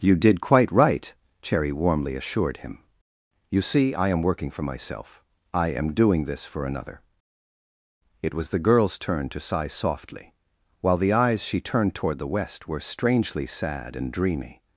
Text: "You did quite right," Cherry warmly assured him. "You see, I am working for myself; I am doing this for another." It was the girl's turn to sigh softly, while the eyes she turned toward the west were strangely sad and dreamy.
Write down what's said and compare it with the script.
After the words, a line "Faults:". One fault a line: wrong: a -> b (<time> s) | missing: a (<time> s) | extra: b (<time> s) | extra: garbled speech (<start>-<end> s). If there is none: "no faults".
"You did quite right," Cherry warmly assured him. "You see, I am working for myself; I am doing this for another." It was the girl's turn to sigh softly, while the eyes she turned toward the west were strangely sad and dreamy.
Faults:
no faults